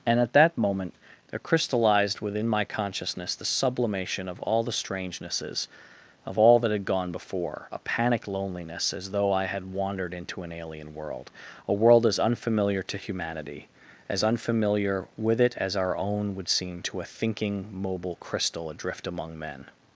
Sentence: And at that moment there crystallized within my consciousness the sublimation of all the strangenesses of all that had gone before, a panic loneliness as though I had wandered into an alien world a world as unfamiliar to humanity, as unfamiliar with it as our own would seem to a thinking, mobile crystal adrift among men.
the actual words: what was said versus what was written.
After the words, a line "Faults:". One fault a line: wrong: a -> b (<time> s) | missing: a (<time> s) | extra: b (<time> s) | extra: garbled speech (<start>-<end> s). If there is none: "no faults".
And at that moment there crystallized within my consciousness the sublimation of all the strangenesses of all that had gone before, a panic loneliness as though I had wandered into an alien world a world as unfamiliar to humanity, as unfamiliar with it as our own would seem to a thinking, mobile crystal adrift among men.
Faults:
no faults